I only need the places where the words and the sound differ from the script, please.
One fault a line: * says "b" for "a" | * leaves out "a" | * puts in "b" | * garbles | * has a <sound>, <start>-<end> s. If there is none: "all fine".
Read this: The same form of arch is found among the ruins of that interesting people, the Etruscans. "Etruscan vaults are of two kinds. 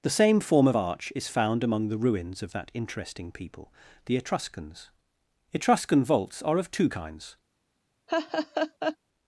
* has a laugh, 8.1-9.0 s